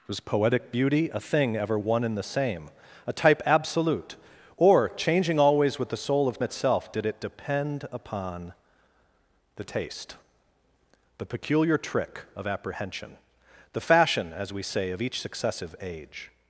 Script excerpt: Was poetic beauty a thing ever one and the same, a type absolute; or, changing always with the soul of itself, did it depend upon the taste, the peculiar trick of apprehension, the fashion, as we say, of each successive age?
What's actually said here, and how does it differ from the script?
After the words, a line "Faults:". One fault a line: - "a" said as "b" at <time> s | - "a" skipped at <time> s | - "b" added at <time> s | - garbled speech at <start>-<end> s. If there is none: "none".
Was poetic beauty a thing ever one and the same, a type absolute; or, changing always with the soul of itself, did it depend upon the taste, the peculiar trick of apprehension, the fashion, as we say, of each successive age?
Faults:
none